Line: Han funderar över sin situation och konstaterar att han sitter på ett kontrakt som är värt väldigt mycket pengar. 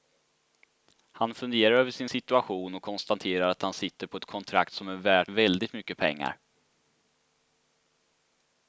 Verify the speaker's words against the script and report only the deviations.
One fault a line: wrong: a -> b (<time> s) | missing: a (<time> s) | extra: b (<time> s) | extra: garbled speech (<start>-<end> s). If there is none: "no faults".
no faults